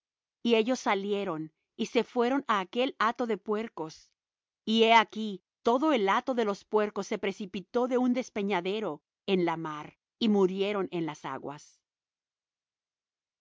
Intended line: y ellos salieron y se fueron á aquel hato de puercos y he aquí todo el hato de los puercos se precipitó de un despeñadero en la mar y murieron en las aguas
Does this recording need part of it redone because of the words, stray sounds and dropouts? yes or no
no